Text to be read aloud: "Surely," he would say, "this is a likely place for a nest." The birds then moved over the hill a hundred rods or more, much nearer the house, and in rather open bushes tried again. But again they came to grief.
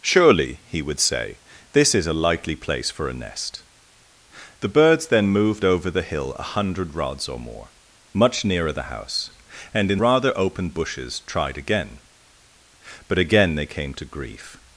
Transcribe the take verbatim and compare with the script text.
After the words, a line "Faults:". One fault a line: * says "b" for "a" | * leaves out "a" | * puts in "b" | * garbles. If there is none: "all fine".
"Surely," he would say, "this is a likely place for a nest." The birds then moved over the hill a hundred rods or more, much nearer the house, and in rather open bushes tried again. But again they came to grief.
Faults:
all fine